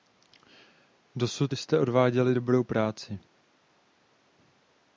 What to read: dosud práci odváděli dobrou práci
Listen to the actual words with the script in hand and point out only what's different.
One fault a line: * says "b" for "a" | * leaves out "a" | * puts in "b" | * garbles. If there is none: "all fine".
* says "jste" for "práci"